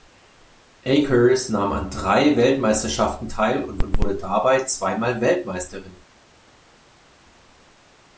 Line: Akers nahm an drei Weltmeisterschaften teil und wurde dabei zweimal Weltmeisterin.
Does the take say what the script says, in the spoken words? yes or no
no